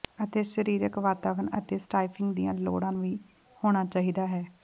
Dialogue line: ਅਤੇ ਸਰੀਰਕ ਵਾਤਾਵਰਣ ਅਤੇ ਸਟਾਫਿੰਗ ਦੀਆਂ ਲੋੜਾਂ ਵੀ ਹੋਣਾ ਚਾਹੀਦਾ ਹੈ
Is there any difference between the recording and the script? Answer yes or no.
no